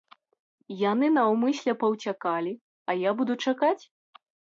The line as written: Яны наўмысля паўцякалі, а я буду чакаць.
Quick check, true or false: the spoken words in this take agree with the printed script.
true